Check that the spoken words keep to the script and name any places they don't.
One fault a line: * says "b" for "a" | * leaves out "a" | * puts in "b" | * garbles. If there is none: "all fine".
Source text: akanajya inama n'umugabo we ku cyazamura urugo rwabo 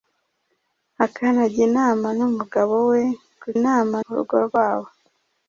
* says "inama" for "cyazamura"